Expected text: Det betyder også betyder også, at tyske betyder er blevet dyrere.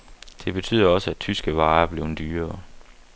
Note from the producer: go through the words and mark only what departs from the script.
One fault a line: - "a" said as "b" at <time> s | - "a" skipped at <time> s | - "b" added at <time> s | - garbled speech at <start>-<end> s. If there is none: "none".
- "betyder også" skipped at 1.1 s
- "betyder" said as "varer" at 1.6 s